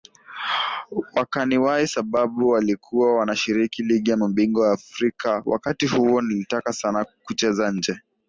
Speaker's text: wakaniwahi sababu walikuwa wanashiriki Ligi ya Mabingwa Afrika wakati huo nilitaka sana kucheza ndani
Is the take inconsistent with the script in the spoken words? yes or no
yes